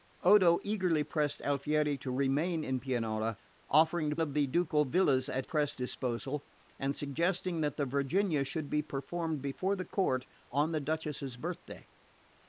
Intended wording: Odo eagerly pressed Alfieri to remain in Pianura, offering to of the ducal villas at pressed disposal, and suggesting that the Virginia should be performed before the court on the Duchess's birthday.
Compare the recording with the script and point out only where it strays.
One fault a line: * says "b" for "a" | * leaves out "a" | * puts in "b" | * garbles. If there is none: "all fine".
all fine